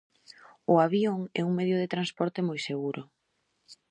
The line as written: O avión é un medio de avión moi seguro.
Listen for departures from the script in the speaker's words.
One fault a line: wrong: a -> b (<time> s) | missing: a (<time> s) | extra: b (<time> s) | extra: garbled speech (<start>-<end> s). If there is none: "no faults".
wrong: avión -> transporte (1.9 s)